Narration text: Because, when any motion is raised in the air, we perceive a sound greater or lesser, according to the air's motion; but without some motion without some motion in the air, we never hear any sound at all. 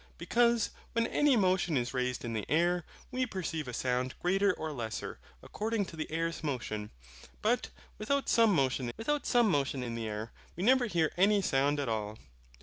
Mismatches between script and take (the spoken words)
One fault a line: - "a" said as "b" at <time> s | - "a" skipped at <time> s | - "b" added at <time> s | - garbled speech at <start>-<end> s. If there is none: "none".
none